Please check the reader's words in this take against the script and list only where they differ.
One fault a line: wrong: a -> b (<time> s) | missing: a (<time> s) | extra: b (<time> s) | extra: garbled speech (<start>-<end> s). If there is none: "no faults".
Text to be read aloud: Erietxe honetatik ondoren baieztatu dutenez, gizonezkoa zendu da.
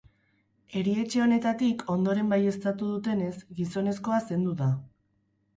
no faults